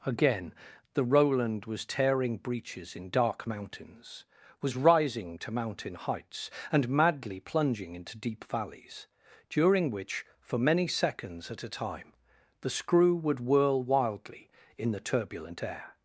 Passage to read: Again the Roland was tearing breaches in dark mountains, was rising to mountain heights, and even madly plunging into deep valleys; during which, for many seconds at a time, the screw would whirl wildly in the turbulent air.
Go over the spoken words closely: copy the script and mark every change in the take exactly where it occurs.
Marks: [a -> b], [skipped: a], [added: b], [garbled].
Again the Roland was tearing breaches in dark mountains, was rising to mountain heights, and [skipped: even] madly plunging into deep valleys; during which, for many seconds at a time, the screw would whirl wildly in the turbulent air.